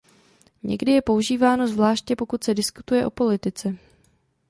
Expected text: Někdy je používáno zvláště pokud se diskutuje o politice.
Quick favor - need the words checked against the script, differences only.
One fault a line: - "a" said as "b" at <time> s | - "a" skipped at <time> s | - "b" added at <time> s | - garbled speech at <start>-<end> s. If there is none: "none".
none